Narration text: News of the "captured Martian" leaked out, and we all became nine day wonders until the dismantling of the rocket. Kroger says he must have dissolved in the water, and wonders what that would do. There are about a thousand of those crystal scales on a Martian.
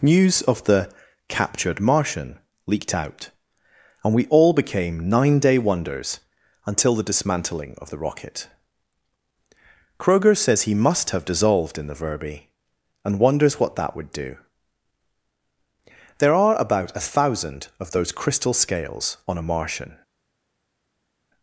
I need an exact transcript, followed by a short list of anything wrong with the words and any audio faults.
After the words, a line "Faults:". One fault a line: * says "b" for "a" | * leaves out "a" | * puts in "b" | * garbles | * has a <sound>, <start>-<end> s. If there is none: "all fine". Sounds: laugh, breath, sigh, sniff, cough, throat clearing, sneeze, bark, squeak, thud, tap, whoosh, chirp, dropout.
News of the "captured Martian" leaked out, and we all became nine day wonders until the dismantling of the rocket. Kroger says he must have dissolved in the verbi, and wonders what that would do. There are about a thousand of those crystal scales on a Martian.
Faults:
* says "verbi" for "water"